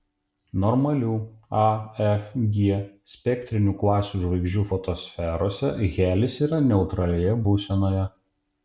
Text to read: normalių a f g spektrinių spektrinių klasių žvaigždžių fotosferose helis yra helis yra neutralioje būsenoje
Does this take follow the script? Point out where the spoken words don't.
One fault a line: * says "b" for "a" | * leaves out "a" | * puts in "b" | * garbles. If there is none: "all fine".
* leaves out "spektrinių"
* leaves out "helis yra"